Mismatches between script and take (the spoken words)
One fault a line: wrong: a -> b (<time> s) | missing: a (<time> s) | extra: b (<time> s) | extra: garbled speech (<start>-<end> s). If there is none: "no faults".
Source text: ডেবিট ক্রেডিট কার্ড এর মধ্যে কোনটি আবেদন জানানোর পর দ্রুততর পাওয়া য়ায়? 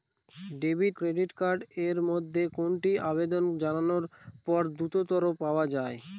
no faults